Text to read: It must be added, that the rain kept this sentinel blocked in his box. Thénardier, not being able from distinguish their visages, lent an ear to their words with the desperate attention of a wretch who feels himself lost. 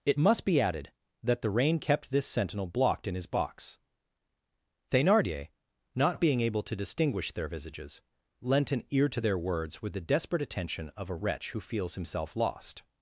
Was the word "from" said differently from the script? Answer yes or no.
yes